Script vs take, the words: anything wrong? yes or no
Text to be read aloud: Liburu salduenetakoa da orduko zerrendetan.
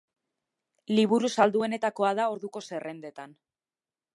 no